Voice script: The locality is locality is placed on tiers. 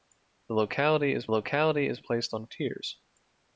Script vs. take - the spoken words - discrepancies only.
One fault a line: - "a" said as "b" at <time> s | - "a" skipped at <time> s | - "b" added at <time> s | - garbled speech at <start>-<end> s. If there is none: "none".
none